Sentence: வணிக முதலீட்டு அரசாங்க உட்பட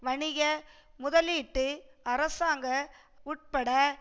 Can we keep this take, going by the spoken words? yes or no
yes